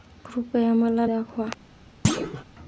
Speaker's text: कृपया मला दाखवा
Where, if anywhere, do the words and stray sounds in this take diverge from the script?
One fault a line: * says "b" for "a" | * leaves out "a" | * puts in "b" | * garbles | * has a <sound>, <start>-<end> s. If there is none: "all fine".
* has a thud, 2.0-2.4 s